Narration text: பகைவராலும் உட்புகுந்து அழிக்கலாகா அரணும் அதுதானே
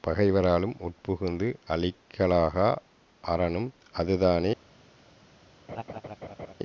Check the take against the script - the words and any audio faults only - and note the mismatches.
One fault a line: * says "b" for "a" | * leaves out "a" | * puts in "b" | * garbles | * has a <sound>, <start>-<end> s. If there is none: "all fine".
* has a laugh, 5.7-6.5 s